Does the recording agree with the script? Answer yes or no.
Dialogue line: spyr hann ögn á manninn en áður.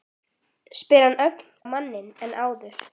yes